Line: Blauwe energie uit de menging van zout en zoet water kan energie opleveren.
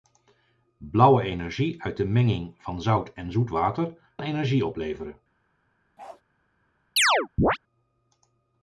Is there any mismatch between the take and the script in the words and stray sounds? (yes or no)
yes